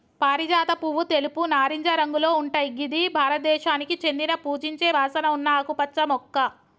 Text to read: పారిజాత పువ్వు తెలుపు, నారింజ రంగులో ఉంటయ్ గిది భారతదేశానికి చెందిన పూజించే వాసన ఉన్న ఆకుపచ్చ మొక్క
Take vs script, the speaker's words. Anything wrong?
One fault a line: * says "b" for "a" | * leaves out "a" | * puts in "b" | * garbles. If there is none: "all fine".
all fine